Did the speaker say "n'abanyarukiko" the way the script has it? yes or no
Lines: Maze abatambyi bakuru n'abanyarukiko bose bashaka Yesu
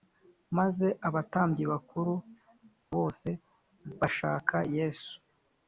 no